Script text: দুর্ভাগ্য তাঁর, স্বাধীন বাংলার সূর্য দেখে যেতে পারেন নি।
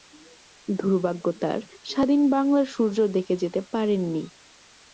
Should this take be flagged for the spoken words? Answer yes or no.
no